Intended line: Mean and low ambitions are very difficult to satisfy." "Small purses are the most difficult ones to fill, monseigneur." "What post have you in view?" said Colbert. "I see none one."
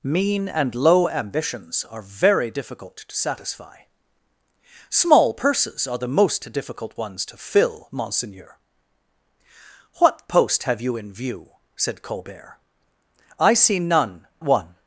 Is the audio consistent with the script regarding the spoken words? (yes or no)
yes